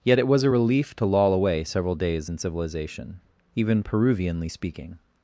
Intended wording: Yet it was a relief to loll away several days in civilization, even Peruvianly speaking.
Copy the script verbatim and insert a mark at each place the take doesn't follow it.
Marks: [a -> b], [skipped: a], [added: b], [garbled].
Yet it was a relief to loll away several days in civilization, even Peruvianly speaking.